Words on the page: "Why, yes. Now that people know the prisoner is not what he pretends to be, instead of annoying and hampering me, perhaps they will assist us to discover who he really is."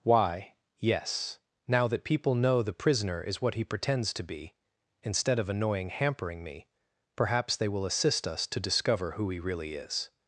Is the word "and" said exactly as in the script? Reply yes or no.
no